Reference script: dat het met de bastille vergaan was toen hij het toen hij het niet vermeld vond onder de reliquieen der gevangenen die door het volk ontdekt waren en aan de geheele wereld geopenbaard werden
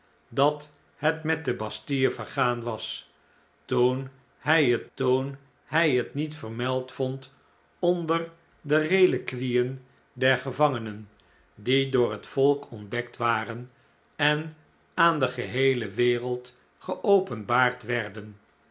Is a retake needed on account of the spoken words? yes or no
no